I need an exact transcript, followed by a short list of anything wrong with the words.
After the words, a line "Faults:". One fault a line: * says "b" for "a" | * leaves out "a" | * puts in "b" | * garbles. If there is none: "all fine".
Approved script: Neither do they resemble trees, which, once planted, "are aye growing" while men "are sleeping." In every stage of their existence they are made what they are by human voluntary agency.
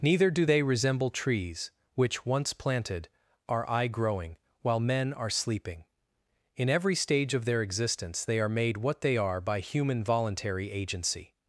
Neither do they resemble trees, which, once planted, "are aye growing" while men "are sleeping." In every stage of their existence they are made what they are by human voluntary agency.
Faults:
all fine